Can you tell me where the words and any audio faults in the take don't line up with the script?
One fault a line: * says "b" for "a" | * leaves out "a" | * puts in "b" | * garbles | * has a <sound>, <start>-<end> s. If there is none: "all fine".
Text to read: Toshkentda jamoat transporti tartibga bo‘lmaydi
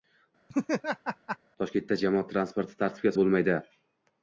* has a laugh, 0.5-1.4 s